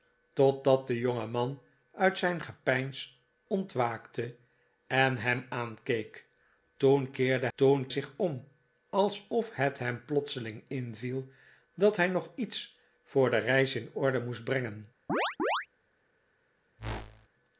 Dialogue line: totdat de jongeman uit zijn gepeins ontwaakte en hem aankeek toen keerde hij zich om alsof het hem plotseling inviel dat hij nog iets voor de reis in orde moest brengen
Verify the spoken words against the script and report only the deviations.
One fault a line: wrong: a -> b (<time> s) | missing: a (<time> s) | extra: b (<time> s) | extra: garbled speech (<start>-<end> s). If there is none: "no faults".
wrong: hij -> toen (7.6 s)